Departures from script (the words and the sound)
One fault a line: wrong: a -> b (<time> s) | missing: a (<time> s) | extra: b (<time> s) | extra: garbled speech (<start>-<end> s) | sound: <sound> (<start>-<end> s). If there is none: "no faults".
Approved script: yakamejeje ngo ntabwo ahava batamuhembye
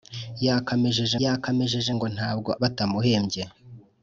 extra: yakamejeje (1.2 s)
missing: ahava (2.5 s)